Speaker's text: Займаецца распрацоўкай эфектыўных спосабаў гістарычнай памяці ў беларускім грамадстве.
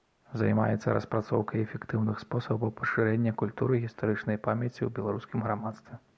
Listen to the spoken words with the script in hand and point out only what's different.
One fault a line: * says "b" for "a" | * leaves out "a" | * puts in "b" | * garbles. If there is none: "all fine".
* puts in "пашырэння культуры"